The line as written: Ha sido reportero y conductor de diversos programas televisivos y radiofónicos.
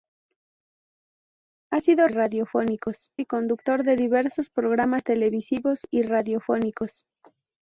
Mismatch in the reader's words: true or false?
true